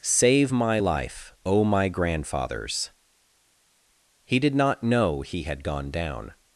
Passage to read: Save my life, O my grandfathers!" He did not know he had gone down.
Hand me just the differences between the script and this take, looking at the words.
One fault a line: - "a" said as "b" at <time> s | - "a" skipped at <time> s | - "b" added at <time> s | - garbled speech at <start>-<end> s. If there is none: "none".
none